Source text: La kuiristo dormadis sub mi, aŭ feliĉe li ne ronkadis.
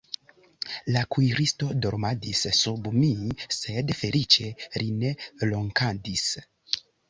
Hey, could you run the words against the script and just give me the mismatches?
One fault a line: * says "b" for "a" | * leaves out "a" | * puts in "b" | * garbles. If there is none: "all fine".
* says "sed" for "aŭ"